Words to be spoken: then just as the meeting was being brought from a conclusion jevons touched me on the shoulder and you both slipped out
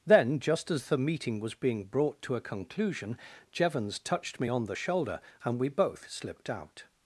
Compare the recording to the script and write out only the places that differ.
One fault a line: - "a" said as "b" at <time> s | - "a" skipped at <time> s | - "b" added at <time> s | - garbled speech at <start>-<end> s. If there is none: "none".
- "from" said as "to" at 2.2 s
- "you" said as "we" at 5.6 s